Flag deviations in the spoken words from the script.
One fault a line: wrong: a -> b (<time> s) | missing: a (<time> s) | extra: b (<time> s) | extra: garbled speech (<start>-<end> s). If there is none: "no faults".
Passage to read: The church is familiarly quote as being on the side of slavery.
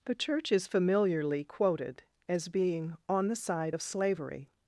wrong: quote -> quoted (1.4 s)